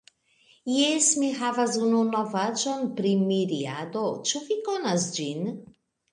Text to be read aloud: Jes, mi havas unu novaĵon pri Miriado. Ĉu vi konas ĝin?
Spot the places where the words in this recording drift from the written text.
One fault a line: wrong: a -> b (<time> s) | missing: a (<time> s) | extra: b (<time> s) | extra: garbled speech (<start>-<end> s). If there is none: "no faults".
no faults